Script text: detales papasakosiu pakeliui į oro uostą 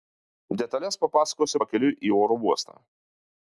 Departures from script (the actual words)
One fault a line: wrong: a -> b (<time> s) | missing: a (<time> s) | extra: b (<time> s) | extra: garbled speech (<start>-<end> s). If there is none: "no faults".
no faults